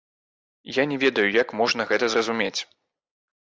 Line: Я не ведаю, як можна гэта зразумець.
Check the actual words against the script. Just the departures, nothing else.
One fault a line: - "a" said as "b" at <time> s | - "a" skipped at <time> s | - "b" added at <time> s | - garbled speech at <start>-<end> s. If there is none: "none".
none